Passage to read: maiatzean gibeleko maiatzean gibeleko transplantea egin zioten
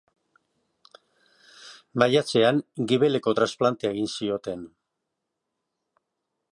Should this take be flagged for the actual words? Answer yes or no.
yes